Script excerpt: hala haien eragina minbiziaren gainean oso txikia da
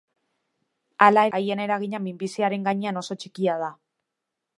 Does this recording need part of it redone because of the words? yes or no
no